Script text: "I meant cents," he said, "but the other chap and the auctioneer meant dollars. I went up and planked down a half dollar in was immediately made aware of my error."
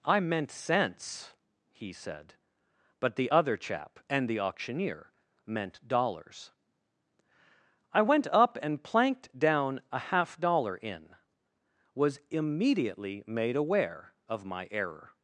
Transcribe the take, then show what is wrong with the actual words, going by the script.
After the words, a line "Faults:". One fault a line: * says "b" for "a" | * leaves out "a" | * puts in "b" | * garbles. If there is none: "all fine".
"I meant cents," he said, "but the other chap and the auctioneer meant dollars. I went up and planked down a half dollar in was immediately made aware of my error."
Faults:
all fine